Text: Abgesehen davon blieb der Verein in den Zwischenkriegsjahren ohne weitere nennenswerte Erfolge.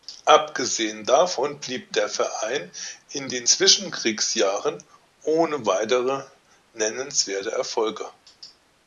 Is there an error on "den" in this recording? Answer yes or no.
no